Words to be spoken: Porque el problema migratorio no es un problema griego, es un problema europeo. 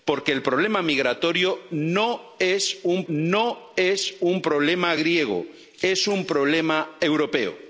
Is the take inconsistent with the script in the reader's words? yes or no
yes